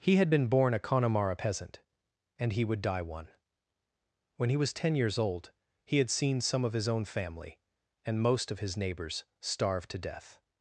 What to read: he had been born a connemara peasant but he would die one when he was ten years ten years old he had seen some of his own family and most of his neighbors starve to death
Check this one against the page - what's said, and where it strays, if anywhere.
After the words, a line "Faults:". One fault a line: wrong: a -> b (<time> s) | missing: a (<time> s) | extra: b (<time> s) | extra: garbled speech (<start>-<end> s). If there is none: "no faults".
he had been born a connemara peasant and he would die one when he was ten years old he had seen some of his own family and most of his neighbors starve to death
Faults:
wrong: but -> and (2.4 s)
missing: ten years (5.2 s)